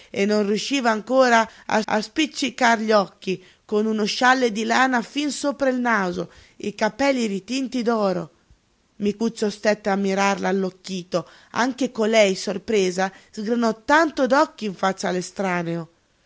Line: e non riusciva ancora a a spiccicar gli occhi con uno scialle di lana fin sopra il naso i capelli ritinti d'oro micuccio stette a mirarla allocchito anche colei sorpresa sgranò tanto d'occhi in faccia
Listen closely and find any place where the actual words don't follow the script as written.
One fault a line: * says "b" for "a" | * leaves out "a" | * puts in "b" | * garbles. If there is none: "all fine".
all fine